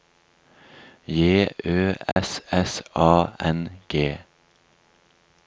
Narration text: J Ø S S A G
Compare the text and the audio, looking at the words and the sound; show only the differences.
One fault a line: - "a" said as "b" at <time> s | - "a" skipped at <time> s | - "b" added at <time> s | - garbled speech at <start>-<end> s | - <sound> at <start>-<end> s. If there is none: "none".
- dropout at 2.1-2.2 s
- "N" added at 3.5 s